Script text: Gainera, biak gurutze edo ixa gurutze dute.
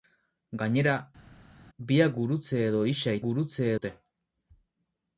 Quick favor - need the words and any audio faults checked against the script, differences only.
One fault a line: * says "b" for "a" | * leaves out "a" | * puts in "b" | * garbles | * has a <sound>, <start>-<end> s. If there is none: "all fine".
all fine